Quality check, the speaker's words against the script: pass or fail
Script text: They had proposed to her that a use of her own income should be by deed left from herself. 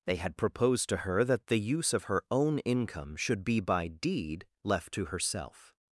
fail